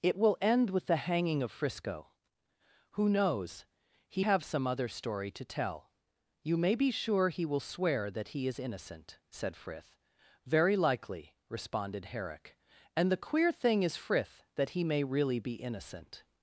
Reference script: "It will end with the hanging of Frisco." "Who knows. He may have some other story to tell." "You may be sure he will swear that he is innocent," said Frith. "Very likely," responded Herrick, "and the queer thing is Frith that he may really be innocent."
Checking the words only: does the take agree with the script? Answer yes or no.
no